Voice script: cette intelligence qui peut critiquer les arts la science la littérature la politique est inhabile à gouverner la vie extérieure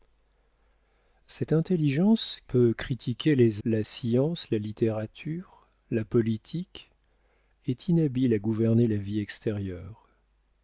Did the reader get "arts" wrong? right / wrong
wrong